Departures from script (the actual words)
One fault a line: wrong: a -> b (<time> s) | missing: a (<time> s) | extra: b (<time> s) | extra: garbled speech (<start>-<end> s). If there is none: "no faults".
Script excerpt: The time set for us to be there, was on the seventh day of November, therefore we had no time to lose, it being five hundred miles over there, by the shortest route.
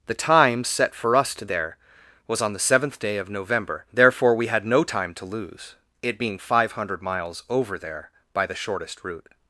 missing: be (1.4 s)